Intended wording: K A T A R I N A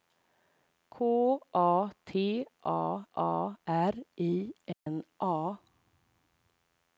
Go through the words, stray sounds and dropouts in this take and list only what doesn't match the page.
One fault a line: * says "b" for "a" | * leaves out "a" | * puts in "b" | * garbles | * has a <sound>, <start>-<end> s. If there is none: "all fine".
* puts in "A"
* has a dropout, 4.7-4.9 s